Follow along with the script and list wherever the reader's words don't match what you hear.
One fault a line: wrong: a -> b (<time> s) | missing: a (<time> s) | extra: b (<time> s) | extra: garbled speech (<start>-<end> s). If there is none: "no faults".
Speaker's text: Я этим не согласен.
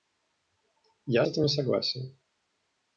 no faults